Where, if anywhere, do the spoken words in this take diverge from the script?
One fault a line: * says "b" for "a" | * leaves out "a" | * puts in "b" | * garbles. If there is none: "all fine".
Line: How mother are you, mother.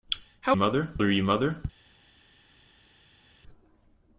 all fine